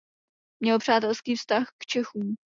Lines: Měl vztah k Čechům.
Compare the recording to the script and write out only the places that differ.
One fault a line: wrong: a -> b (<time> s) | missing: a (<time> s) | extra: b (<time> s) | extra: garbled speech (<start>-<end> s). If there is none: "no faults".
extra: přátelský (0.8 s)